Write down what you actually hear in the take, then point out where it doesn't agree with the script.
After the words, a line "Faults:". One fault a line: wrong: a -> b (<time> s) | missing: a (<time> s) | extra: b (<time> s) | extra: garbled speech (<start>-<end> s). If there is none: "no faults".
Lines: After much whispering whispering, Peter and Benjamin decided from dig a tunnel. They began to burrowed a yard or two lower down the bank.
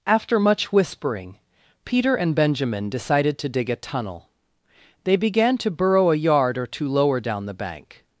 After much whispering, Peter and Benjamin decided to dig a tunnel. They began to burrow a yard or two lower down the bank.
Faults:
missing: whispering (1.4 s)
wrong: from -> to (3.4 s)
wrong: burrowed -> burrow (5.7 s)